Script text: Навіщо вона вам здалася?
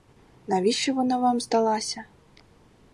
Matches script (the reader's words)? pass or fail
pass